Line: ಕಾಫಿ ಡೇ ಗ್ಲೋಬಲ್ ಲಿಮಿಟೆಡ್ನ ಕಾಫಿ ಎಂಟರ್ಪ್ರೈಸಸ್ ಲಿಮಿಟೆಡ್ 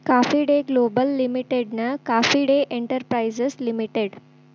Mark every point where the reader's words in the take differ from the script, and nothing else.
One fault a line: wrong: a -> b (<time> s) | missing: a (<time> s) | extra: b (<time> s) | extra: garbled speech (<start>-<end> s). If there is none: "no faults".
extra: ಡೇ (2.4 s)